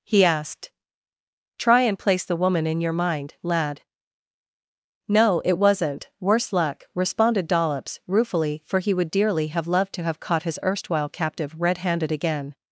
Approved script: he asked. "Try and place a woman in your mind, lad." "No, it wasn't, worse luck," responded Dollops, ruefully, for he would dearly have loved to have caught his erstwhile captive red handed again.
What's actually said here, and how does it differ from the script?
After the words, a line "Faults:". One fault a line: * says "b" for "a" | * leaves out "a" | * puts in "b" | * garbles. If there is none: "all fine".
he asked. "Try and place the woman in your mind, lad." "No, it wasn't, worse luck," responded Dollops, ruefully, for he would dearly have loved to have caught his erstwhile captive red handed again.
Faults:
* says "the" for "a"